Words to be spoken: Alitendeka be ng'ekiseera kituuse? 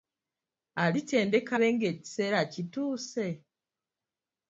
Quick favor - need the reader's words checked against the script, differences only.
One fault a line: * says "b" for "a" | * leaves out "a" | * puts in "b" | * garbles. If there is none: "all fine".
all fine